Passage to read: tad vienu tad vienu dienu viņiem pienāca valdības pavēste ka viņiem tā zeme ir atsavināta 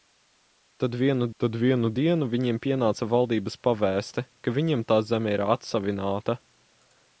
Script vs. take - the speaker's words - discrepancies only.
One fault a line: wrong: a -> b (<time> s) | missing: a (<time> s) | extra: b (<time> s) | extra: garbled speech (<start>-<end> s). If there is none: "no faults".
no faults